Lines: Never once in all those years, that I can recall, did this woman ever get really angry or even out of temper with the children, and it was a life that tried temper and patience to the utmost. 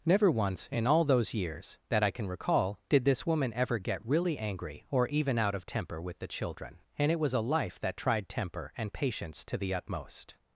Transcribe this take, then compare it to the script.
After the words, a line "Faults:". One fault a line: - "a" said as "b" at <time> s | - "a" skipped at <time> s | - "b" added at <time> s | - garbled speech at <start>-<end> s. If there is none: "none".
Never once in all those years, that I can recall, did this woman ever get really angry or even out of temper with the children, and it was a life that tried temper and patience to the utmost.
Faults:
none